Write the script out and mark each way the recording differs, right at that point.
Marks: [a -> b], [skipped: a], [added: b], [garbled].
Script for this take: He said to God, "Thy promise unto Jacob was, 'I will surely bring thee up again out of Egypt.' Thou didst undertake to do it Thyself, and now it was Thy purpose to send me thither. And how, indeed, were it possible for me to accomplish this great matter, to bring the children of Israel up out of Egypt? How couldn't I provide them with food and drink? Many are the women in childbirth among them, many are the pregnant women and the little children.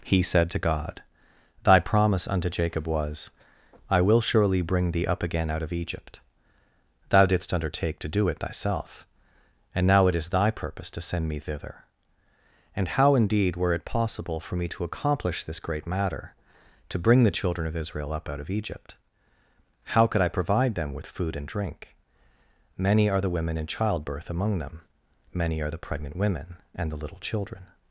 He said to God, "Thy promise unto Jacob was, 'I will surely bring thee up again out of Egypt.' Thou didst undertake to do it Thyself, and now it [was -> is] Thy purpose to send me thither. And how, indeed, were it possible for me to accomplish this great matter, to bring the children of Israel up out of Egypt? How [couldn't -> could] I provide them with food and drink? Many are the women in childbirth among them, many are the pregnant women and the little children.